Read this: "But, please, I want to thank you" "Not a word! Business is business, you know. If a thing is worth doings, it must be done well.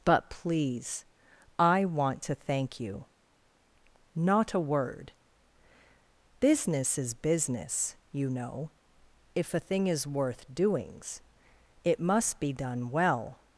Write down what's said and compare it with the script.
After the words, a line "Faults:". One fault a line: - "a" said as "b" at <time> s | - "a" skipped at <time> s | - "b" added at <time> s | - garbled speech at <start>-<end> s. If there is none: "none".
"But, please, I want to thank you" "Not a word! Business is business, you know. If a thing is worth doings, it must be done well.
Faults:
none